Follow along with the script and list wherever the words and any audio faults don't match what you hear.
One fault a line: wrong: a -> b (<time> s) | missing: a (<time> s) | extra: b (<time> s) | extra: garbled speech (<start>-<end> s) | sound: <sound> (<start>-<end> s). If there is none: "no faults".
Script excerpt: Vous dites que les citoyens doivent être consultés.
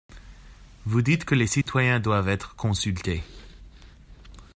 sound: dropout (1.6-1.7 s)